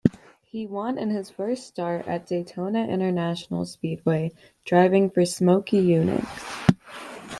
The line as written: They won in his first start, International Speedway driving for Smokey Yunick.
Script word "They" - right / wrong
wrong